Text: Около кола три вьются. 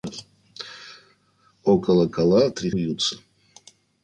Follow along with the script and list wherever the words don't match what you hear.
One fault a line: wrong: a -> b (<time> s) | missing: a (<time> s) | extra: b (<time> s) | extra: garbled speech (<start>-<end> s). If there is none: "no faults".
no faults